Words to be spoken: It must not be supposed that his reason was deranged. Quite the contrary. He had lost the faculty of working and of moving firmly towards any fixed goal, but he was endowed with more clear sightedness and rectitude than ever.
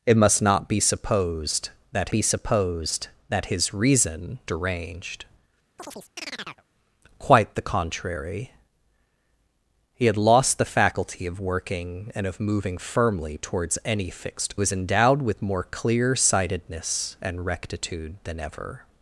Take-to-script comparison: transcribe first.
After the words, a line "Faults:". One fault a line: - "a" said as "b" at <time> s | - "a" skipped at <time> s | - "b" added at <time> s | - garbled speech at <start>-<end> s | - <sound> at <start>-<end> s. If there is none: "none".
It must not be supposed that be supposed that his reason deranged. Quite the contrary. He had lost the faculty of working and of moving firmly towards any fixed was endowed with more clear sightedness and rectitude than ever.
Faults:
- "be supposed that" added at 2.1 s
- "was" skipped at 4.4 s
- chirp at 5.8-6.6 s
- "goal but he" skipped at 14.6 s